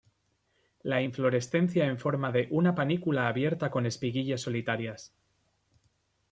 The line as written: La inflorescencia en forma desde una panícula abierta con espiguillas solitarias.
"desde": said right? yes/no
no